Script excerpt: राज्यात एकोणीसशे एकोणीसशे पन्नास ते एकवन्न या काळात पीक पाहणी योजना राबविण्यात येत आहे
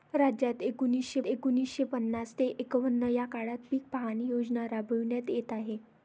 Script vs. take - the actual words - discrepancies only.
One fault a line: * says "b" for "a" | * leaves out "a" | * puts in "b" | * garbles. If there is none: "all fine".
all fine